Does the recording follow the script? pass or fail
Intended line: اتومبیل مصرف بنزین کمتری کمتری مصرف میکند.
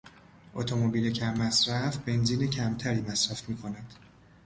fail